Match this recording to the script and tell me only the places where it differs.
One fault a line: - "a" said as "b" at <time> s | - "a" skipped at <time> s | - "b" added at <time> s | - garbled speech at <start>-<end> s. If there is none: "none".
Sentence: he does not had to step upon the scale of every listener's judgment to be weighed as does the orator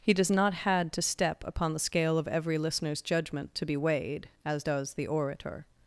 none